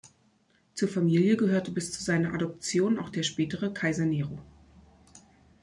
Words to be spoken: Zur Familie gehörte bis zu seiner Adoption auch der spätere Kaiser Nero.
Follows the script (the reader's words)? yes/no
yes